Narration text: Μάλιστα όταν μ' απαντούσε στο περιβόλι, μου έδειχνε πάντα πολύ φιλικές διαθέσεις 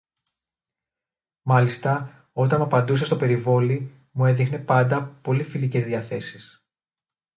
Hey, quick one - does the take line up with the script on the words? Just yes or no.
yes